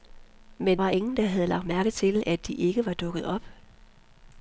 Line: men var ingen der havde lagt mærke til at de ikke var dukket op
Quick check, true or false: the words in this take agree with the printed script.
true